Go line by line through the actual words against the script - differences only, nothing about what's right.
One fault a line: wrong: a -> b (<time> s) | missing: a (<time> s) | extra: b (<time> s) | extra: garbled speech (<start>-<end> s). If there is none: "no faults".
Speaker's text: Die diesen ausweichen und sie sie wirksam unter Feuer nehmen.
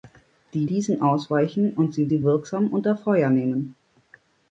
no faults